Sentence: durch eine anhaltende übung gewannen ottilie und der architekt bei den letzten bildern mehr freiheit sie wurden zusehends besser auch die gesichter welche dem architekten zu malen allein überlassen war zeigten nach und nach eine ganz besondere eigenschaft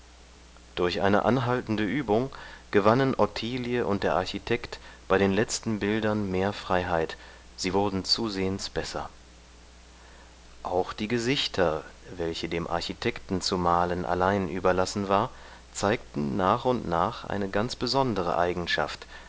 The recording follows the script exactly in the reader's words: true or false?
true